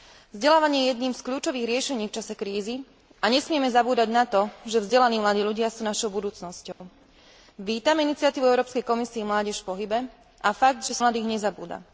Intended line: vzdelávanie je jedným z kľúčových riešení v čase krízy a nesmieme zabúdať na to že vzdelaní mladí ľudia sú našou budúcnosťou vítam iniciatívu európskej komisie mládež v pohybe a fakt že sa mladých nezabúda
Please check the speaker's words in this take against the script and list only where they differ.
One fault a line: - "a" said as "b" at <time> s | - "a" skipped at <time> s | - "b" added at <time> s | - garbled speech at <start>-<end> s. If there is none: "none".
none